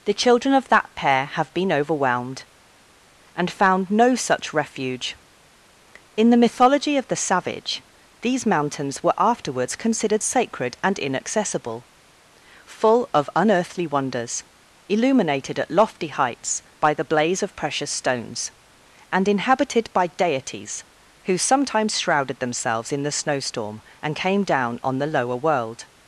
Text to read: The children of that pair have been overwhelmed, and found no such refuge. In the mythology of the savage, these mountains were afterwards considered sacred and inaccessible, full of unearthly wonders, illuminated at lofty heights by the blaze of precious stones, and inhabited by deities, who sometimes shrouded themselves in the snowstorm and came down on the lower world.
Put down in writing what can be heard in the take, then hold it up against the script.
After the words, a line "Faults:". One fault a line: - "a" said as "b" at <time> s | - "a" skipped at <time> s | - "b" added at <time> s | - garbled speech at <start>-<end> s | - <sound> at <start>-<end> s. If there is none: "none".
The children of that pair have been overwhelmed, and found no such refuge. In the mythology of the savage, these mountains were afterwards considered sacred and inaccessible, full of unearthly wonders, illuminated at lofty heights by the blaze of precious stones, and inhabited by deities, who sometimes shrouded themselves in the snowstorm and came down on the lower world.
Faults:
none